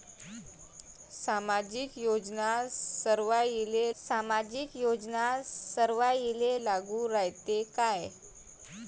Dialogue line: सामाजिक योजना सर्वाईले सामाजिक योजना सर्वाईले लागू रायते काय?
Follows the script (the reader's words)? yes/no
yes